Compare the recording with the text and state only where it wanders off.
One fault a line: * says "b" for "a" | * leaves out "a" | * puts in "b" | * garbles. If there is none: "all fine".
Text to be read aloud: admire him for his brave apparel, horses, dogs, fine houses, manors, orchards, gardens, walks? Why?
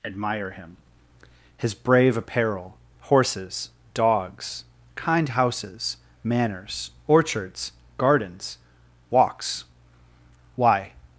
* leaves out "for"
* says "kind" for "fine"